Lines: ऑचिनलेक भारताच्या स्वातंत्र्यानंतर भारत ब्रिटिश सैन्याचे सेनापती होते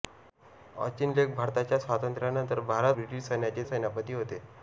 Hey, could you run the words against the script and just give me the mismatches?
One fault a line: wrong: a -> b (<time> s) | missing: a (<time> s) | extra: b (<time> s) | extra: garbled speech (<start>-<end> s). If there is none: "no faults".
no faults